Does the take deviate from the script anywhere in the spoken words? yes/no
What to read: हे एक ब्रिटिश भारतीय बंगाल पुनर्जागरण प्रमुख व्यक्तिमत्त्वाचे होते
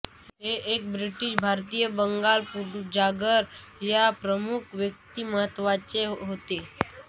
yes